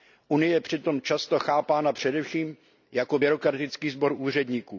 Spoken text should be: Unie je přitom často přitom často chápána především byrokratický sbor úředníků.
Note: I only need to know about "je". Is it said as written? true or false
true